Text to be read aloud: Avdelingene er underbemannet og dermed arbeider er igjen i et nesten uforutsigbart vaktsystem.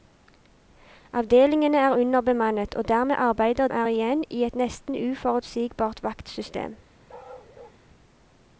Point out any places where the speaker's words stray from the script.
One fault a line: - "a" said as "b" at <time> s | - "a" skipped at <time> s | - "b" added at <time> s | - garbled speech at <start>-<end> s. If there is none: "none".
none